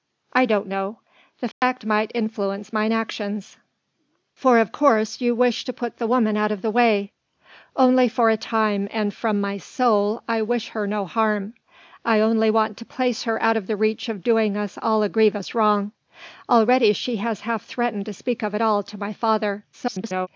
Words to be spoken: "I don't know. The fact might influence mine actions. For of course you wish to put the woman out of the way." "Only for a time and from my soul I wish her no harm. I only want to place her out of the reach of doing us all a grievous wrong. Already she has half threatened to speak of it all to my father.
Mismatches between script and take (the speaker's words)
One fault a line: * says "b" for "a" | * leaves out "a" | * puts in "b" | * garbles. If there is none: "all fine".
* garbles